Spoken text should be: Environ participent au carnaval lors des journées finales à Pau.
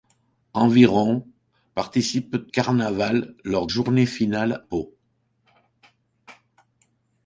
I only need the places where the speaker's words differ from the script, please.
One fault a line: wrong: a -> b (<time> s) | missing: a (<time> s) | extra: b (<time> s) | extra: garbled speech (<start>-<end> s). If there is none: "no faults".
missing: au (2.5 s)
missing: des (3.7 s)
missing: à (4.6 s)